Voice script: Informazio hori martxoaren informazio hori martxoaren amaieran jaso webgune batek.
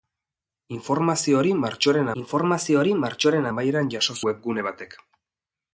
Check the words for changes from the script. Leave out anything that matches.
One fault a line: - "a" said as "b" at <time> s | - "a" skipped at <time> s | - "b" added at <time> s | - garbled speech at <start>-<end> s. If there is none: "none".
none